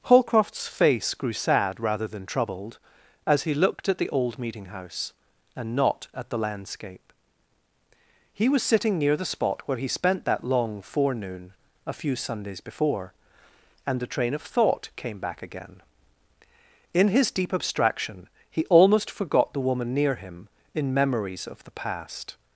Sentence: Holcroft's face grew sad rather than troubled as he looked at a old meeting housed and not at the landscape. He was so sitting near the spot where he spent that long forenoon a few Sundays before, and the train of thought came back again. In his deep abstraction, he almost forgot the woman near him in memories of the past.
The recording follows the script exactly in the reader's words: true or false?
false